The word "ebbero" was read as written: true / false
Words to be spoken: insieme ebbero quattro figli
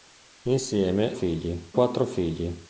false